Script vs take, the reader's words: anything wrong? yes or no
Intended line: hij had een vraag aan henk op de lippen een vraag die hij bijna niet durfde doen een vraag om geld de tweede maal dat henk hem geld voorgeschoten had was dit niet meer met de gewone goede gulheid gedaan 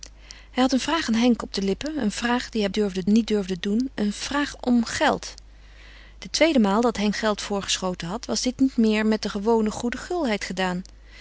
yes